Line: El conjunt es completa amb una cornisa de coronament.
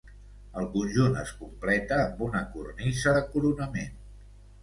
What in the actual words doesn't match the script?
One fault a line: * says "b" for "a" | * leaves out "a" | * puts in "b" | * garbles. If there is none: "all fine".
all fine